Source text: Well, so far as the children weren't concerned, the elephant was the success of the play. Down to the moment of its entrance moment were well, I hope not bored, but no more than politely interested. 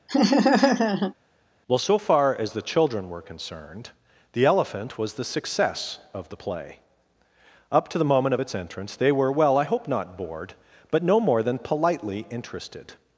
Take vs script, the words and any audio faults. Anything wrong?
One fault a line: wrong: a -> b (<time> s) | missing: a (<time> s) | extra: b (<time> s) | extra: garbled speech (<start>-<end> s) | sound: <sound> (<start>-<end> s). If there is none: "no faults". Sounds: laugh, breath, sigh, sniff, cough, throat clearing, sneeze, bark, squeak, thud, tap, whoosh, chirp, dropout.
sound: laugh (0.1-1.1 s)
wrong: weren't -> were (3.1 s)
wrong: Down -> Up (7.7 s)
wrong: moment -> they (8.9 s)